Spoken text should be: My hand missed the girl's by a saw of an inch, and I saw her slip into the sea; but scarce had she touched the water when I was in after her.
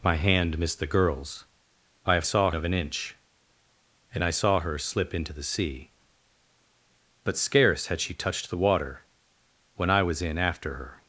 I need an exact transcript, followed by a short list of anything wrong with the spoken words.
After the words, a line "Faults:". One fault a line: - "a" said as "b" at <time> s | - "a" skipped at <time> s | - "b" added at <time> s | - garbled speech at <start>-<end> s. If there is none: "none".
My hand missed the girl's by a saw of an inch, and I saw her slip into the sea; but scarce had she touched the water when I was in after her.
Faults:
none